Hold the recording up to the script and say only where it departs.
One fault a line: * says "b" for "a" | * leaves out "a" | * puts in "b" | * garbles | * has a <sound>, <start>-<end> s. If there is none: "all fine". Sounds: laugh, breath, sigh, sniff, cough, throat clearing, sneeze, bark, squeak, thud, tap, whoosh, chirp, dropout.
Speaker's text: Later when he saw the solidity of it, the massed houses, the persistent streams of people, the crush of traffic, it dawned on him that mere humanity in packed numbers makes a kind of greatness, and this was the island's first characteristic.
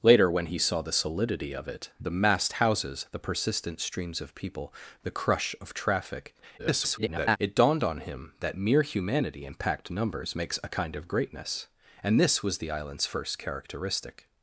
* garbles